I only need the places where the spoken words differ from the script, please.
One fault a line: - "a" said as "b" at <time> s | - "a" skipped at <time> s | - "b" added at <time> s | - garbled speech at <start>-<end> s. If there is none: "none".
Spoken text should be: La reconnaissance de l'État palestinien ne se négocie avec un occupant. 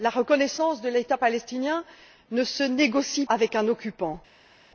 none